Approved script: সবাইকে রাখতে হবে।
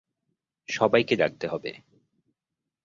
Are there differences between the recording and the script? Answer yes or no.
no